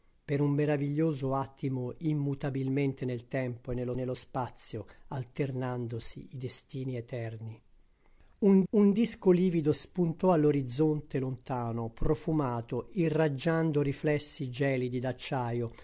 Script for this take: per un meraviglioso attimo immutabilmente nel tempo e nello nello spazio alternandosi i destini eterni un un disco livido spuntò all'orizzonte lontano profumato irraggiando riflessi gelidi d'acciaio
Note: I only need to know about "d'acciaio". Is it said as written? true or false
true